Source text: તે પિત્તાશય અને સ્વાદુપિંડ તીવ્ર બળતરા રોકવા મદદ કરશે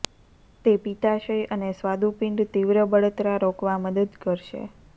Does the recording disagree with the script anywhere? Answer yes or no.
no